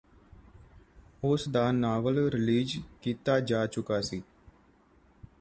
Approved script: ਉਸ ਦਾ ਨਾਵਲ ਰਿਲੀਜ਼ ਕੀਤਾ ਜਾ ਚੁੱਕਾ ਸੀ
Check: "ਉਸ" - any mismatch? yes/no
no